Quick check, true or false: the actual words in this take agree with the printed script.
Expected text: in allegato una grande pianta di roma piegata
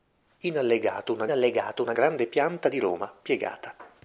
false